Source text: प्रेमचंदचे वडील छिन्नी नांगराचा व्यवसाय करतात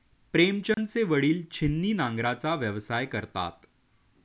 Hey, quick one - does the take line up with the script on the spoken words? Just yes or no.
yes